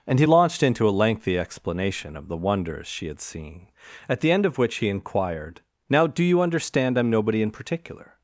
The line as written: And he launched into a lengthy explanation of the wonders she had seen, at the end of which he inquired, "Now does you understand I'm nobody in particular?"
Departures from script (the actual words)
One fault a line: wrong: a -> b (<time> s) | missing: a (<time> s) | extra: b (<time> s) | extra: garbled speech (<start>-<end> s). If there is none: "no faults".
wrong: does -> do (6.1 s)